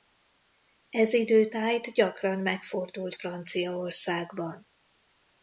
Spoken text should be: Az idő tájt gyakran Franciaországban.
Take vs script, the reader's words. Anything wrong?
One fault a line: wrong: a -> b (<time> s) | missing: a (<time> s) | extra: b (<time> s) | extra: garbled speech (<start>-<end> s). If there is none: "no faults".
wrong: Az -> Ez (0.9 s)
extra: megfordult (2.4 s)